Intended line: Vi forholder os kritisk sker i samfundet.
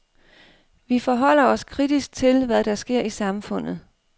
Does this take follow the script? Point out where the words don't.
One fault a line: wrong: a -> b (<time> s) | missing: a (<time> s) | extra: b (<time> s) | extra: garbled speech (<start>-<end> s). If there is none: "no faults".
extra: til hvad der (2.1 s)